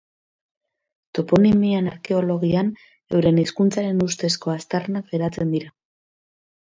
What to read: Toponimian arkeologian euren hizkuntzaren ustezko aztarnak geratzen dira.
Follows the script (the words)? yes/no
yes